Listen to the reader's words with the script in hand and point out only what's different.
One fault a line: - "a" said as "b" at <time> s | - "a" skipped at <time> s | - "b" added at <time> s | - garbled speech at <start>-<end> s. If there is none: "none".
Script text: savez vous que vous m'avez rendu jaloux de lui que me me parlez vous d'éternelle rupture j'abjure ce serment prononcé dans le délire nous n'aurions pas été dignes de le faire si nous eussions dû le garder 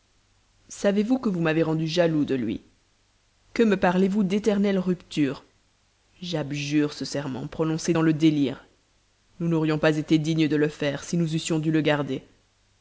- "me" skipped at 3.8 s